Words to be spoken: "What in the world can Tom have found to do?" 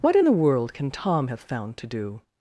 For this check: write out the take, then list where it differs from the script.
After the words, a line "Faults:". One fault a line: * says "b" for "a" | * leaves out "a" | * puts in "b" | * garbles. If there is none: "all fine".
"What in the world can Tom have found to do?"
Faults:
all fine